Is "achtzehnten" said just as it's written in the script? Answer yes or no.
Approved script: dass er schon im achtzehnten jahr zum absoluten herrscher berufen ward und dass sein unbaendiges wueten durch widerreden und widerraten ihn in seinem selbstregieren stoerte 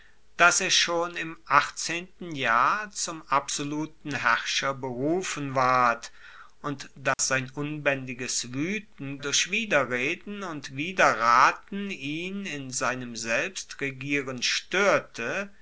yes